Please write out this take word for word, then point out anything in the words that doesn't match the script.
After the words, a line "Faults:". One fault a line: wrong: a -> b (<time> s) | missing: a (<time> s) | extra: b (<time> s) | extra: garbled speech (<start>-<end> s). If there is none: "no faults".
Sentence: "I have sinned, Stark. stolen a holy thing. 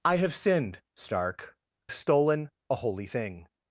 "I have sinned, Stark. stolen a holy thing.
Faults:
no faults